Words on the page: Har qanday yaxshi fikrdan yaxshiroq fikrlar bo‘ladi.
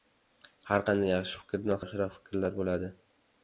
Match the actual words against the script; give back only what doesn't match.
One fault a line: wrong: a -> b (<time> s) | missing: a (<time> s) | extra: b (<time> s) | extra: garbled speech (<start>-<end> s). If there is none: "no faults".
no faults